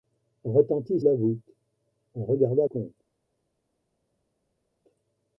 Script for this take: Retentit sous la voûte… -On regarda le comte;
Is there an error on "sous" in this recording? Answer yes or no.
yes